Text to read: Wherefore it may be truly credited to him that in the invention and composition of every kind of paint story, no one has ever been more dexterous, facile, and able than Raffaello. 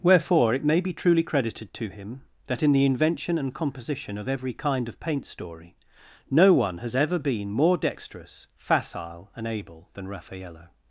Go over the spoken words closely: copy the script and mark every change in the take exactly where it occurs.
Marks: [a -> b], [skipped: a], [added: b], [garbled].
Wherefore it may be truly credited to him that in the invention and composition of every kind of paint story, no one has ever been more dexterous, facile, and able than Raffaello.